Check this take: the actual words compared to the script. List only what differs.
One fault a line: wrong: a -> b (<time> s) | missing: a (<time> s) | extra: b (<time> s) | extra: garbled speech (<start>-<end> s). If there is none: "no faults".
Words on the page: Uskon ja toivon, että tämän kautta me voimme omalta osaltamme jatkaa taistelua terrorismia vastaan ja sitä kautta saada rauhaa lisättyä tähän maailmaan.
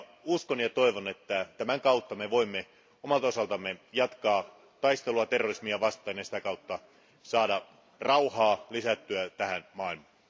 no faults